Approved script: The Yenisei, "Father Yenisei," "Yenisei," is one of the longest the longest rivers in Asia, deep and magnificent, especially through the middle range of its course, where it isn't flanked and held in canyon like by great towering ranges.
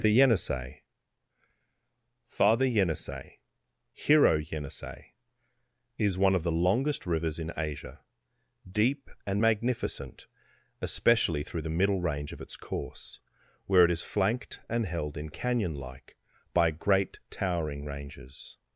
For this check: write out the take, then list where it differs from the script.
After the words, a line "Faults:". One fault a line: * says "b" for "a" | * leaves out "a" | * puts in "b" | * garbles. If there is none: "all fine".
The Yenisei, "Father Yenisei," "Hero Yenisei," is one of the longest rivers in Asia, deep and magnificent, especially through the middle range of its course, where it is flanked and held in canyon like by great towering ranges.
Faults:
* puts in "Hero"
* leaves out "the longest"
* says "is" for "isn't"